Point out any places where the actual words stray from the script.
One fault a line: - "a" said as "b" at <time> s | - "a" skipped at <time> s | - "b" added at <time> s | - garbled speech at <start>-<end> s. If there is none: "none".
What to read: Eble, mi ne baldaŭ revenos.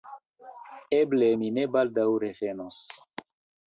none